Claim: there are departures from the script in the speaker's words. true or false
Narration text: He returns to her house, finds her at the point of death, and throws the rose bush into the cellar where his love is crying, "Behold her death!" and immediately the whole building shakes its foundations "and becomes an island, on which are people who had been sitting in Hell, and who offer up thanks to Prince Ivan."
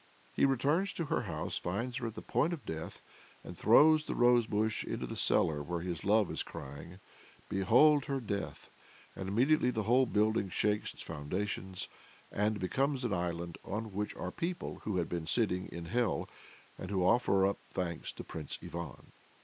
false